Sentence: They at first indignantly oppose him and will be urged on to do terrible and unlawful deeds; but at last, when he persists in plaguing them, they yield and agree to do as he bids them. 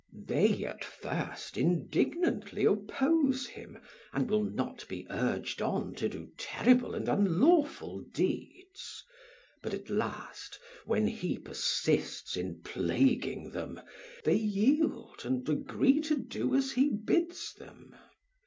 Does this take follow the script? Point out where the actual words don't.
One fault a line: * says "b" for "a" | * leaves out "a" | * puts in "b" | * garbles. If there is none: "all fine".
* puts in "not"